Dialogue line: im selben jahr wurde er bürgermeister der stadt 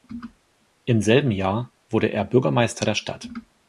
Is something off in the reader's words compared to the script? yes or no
no